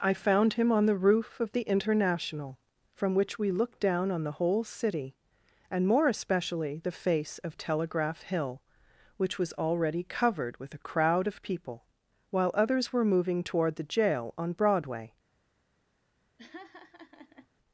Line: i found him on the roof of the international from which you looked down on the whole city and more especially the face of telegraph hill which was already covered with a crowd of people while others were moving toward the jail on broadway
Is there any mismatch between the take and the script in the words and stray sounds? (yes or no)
yes